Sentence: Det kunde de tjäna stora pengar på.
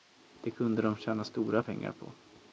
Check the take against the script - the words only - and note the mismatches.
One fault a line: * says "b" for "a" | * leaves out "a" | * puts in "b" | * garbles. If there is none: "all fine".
all fine